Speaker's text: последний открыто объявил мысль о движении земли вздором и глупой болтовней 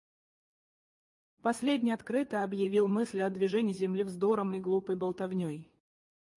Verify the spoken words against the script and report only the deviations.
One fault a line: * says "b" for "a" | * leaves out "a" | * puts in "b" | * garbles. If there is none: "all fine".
all fine